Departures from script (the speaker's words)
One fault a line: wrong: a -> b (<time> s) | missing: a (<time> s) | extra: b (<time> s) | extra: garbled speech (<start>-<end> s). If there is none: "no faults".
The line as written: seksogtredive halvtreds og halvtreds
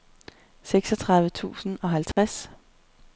wrong: halvtreds -> tusind (1.3 s)